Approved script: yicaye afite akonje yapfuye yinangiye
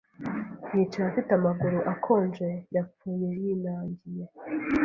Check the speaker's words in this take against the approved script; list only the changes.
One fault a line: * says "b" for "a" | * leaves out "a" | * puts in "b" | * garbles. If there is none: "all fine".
* puts in "amaguru"